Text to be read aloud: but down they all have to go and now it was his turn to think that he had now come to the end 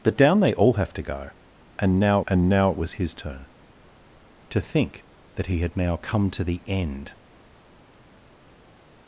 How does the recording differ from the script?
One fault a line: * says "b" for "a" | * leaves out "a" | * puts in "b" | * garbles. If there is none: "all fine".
* puts in "and now"